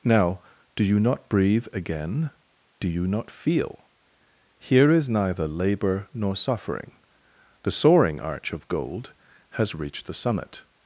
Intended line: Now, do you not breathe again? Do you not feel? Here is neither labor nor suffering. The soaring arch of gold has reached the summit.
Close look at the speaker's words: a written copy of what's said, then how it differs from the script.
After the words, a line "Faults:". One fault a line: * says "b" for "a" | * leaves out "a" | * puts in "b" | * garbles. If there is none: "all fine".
Now, do you not breathe again? Do you not feel? Here is neither labor nor suffering. The soaring arch of gold has reached the summit.
Faults:
all fine